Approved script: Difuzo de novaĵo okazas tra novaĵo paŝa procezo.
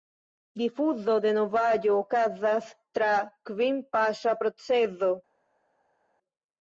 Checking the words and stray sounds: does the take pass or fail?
fail